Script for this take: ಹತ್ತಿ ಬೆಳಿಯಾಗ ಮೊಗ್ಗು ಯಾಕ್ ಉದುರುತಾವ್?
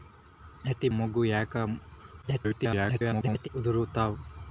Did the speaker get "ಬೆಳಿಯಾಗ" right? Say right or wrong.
wrong